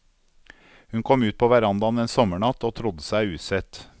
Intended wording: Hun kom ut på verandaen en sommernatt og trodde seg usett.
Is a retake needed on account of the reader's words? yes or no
no